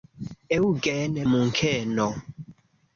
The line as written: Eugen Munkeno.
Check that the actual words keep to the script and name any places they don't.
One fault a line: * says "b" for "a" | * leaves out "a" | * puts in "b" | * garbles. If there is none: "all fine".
all fine